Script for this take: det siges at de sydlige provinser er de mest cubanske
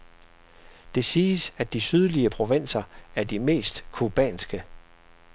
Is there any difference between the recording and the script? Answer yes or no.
no